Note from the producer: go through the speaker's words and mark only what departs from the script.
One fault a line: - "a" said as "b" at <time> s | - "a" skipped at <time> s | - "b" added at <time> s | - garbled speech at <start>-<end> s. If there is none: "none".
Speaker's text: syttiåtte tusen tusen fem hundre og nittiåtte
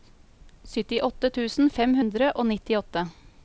- "tusen" skipped at 1.7 s